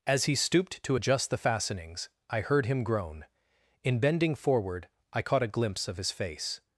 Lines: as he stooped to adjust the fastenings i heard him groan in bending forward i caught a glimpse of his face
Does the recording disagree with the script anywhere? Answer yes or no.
no